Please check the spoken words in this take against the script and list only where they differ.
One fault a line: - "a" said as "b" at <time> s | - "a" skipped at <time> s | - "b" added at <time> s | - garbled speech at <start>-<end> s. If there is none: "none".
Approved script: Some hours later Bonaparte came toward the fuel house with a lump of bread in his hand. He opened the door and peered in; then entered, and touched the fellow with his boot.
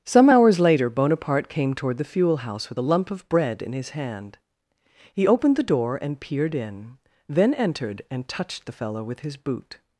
none